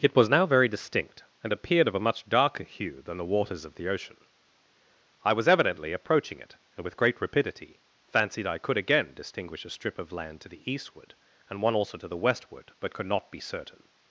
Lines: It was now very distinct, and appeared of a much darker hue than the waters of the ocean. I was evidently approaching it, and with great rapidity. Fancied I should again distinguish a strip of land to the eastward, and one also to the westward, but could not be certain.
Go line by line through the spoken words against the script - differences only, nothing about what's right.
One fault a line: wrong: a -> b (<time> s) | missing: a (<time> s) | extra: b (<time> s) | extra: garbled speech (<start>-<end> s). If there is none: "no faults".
wrong: should -> could (8.6 s)